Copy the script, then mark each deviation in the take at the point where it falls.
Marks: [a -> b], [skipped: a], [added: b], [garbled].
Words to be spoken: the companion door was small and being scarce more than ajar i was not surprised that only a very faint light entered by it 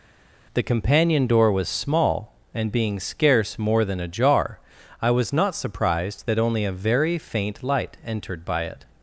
the companion door was small and being scarce more than ajar i was not surprised that only a very faint light entered by it